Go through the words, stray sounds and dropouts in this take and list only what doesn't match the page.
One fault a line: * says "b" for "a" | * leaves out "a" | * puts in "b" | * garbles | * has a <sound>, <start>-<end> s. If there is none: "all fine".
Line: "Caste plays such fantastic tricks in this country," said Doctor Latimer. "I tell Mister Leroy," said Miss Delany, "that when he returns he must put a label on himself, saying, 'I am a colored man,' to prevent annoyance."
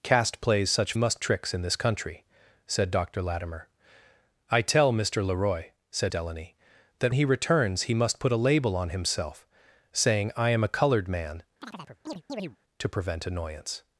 * says "must" for "fantastic"
* leaves out "Miss"
* leaves out "when"
* has a chirp, 11.6-12.6 s